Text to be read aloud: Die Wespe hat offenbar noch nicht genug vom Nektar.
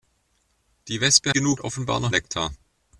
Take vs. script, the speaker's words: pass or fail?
fail